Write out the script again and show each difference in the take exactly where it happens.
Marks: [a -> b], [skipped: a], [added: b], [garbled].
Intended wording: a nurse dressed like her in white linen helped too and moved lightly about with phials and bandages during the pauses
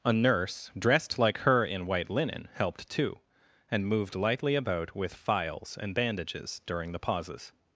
a nurse dressed like her in white linen helped too and moved lightly about with phials and bandages during the pauses